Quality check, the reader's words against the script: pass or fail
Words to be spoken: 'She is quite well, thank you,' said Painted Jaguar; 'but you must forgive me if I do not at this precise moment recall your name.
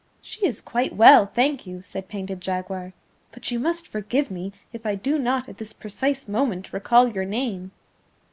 pass